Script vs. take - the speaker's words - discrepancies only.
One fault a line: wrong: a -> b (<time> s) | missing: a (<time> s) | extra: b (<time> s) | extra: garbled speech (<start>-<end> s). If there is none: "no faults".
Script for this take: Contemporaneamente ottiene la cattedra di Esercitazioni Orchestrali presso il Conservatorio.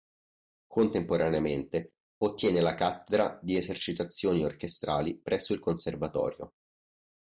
no faults